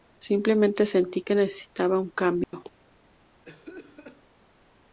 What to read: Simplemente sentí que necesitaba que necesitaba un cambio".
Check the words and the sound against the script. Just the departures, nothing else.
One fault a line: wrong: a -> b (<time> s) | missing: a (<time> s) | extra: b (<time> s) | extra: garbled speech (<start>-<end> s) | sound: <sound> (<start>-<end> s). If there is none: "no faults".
missing: que necesitaba (2.0 s)
sound: dropout (2.4-2.5 s)
sound: cough (3.4-4.2 s)